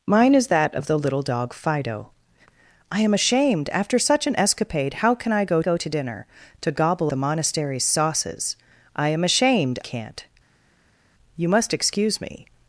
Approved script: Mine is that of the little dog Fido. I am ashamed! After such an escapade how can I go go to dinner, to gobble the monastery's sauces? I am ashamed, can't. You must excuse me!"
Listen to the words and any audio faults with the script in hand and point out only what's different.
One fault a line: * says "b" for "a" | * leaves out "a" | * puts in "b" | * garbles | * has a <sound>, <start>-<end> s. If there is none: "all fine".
all fine